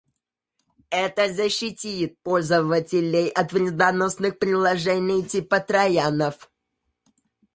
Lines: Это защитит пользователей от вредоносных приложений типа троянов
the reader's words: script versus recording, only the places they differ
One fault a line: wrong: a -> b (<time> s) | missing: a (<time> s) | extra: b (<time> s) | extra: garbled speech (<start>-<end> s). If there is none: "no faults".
no faults